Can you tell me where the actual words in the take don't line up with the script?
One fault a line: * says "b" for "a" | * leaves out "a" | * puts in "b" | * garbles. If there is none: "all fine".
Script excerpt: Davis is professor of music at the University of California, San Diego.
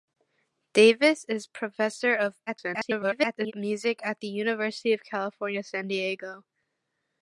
* garbles